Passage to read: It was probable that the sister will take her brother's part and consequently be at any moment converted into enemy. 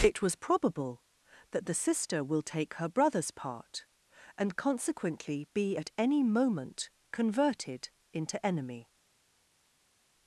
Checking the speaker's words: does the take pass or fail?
pass